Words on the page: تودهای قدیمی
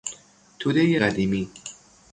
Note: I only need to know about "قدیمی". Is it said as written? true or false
true